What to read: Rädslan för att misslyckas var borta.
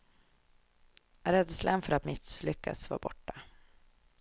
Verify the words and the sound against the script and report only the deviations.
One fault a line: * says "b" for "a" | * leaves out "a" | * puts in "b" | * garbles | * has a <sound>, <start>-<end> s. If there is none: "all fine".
all fine